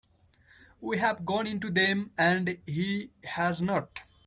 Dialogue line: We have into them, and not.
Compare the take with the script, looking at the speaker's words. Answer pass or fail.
fail